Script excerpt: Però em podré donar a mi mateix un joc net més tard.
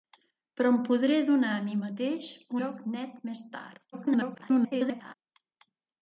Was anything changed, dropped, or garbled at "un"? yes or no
yes